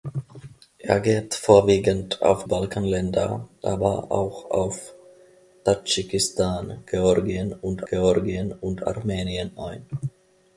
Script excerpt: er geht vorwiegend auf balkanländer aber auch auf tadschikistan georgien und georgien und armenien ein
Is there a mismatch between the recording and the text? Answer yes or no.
no